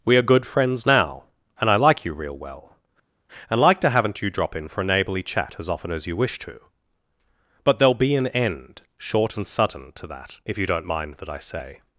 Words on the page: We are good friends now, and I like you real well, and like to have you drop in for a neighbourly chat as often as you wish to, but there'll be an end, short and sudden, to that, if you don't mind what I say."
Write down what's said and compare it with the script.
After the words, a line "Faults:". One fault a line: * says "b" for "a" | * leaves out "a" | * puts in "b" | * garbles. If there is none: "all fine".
We are good friends now, and I like you real well, and like to haven't you drop in for a neighbourly chat as often as you wish to, but there'll be an end, short and sudden, to that, if you don't mind that I say."
Faults:
* says "haven't" for "have"
* says "that" for "what"